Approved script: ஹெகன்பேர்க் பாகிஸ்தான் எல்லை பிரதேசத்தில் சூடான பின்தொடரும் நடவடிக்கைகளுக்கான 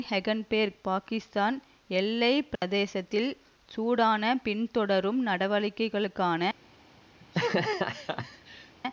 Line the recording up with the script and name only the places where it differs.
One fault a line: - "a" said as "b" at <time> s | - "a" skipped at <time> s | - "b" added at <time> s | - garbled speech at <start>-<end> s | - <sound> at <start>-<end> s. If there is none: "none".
- dropout at 2.6-2.6 s
- laugh at 7.2-8.7 s